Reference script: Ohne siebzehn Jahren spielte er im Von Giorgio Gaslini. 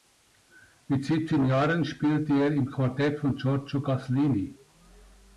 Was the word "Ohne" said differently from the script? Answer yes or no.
yes